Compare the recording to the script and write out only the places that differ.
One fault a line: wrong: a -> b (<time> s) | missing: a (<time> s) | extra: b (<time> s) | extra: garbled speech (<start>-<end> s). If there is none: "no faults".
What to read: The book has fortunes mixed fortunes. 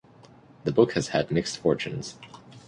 wrong: fortunes -> had (1.1 s)